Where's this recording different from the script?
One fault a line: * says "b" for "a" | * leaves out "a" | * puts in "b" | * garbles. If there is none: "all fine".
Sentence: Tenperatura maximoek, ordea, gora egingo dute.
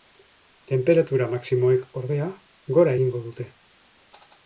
all fine